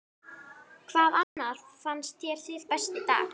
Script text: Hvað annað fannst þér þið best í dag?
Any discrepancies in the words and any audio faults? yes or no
yes